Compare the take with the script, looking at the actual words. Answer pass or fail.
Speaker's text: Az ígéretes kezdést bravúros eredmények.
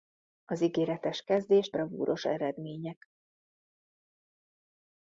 pass